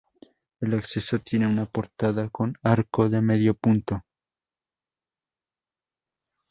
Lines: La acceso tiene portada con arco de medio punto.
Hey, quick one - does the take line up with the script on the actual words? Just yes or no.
no